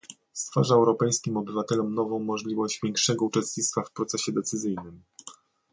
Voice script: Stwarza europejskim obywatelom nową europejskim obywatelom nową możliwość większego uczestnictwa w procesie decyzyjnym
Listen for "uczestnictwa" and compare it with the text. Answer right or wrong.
right